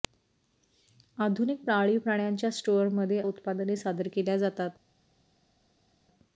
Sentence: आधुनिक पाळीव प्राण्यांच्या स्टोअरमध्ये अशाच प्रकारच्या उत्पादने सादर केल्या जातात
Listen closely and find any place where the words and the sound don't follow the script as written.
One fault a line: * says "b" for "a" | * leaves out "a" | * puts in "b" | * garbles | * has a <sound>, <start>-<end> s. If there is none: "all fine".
* leaves out "अशाच प्रकारच्या"